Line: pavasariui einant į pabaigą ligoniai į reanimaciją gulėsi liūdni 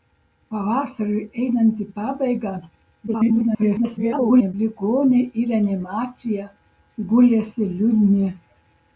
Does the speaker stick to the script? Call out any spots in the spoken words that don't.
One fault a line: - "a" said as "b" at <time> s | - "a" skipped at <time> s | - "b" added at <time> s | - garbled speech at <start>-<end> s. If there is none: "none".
- garbled speech at 3.1-4.5 s